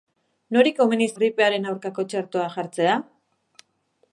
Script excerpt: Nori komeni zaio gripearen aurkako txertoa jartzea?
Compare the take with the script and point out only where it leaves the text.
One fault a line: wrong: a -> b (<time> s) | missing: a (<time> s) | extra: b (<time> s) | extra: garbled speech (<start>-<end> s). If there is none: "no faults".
missing: zaio (1.1 s)